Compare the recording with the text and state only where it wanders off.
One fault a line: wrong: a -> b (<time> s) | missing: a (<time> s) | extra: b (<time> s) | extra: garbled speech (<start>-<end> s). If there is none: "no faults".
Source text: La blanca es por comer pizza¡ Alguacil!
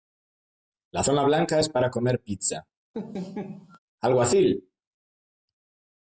extra: zona (1.0 s)
wrong: por -> para (1.7 s)